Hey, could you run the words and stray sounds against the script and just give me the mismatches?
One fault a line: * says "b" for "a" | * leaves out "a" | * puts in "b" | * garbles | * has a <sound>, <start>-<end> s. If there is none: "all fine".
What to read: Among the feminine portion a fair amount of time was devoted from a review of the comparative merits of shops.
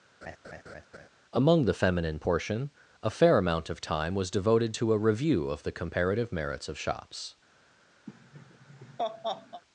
* has a laugh, 0.2-1.1 s
* says "to" for "from"
* has a laugh, 8.1-9.6 s